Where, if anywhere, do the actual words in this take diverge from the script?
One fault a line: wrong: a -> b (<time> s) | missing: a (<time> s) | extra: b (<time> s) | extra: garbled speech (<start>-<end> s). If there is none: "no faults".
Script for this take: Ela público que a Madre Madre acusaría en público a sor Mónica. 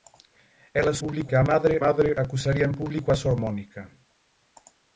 no faults